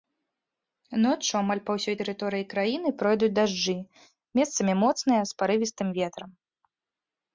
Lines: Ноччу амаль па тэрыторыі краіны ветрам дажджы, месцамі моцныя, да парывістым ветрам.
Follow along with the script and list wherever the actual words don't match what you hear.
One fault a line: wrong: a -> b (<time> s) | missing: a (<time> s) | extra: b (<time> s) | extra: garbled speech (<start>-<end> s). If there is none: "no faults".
extra: ўсёй (1.8 s)
wrong: ветрам -> пройдуць (3.0 s)
wrong: да -> з (5.3 s)